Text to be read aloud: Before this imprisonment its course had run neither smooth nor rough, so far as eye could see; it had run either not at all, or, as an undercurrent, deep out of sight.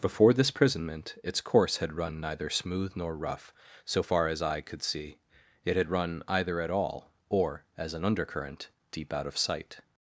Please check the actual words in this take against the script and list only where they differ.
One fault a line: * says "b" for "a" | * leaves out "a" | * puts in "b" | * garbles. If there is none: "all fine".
* leaves out "not"